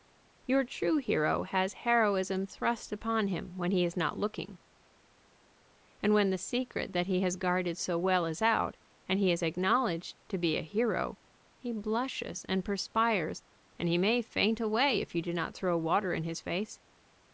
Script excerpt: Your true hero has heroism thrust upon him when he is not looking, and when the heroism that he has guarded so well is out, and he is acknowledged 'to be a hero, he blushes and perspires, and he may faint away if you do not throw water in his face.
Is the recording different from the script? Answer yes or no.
yes